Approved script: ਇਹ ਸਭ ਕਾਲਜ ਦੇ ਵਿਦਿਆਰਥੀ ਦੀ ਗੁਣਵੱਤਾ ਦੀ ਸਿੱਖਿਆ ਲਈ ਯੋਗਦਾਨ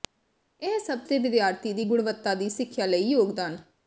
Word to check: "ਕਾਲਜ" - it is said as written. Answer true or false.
false